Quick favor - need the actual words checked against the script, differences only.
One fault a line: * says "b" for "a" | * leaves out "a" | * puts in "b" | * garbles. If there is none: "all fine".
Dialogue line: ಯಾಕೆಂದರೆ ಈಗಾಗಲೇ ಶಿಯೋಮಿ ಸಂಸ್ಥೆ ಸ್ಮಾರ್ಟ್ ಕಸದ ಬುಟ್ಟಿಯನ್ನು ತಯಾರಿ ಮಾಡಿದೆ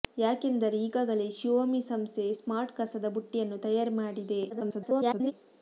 * garbles